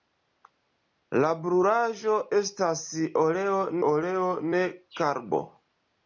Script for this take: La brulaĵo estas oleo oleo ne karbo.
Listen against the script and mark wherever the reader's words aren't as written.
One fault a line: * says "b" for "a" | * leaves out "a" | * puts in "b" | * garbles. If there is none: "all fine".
all fine